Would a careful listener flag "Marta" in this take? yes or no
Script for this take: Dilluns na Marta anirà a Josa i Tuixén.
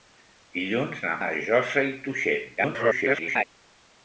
yes